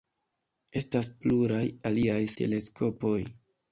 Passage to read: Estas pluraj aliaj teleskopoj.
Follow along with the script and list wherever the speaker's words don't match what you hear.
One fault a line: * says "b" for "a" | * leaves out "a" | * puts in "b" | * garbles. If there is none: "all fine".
all fine